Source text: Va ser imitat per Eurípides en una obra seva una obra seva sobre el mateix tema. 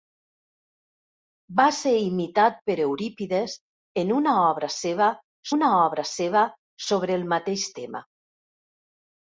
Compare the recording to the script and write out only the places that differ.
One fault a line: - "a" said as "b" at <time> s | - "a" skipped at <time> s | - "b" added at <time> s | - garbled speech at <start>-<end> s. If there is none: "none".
none